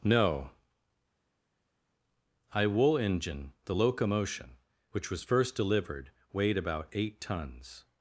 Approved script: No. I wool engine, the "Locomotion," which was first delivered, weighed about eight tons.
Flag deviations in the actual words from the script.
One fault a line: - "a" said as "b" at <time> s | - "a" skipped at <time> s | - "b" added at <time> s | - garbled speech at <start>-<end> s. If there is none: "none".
none